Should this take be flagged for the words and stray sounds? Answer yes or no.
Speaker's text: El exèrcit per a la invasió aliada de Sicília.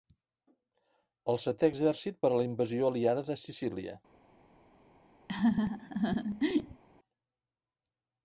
yes